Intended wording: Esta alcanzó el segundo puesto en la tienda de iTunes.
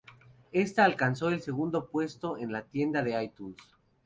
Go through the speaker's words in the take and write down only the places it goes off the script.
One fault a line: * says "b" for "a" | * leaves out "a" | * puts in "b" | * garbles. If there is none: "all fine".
all fine